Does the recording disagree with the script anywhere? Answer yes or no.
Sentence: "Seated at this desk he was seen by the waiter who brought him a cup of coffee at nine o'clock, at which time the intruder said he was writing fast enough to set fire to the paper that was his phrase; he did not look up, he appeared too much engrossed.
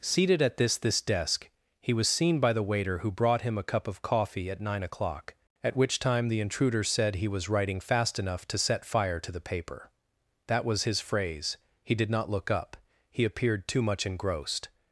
yes